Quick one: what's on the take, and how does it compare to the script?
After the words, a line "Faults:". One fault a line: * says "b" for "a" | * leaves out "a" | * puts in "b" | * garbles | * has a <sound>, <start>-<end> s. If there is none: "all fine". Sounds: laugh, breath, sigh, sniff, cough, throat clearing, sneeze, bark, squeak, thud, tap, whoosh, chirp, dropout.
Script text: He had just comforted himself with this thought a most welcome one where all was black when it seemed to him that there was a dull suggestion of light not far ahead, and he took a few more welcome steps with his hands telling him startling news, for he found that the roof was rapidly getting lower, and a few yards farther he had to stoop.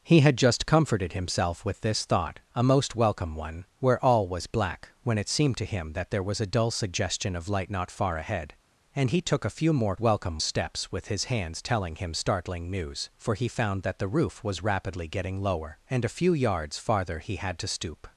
He had just comforted himself with this thought a most welcome one where all was black when it seemed to him that there was a dull suggestion of light not far ahead, and he took a few more welcome steps with his hands telling him startling news, for he found that the roof was rapidly getting lower, and a few yards farther he had to stoop.
Faults:
all fine